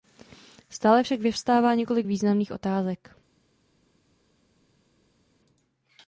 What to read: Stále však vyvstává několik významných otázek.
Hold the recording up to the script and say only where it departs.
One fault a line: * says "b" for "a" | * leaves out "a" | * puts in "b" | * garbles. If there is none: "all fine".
all fine